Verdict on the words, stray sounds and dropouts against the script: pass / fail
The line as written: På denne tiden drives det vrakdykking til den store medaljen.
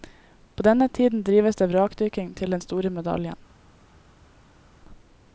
pass